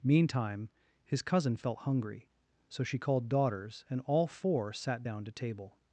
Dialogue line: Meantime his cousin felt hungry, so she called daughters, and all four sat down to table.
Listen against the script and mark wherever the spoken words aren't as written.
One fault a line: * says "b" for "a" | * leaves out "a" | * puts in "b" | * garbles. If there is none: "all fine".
all fine